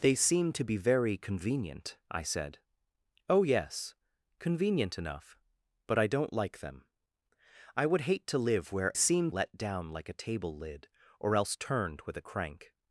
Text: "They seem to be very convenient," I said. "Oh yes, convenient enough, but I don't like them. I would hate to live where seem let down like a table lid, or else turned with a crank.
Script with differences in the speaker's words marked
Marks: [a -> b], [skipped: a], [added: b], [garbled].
"They seem to be very convenient," I said. "Oh yes, convenient enough, but I don't like them. I would hate to live where seem let down like a table lid, or else turned with a crank.